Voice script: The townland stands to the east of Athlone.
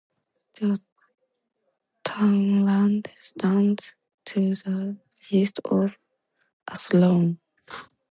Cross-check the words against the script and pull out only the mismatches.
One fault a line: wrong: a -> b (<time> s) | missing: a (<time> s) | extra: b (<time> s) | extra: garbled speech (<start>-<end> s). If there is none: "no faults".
no faults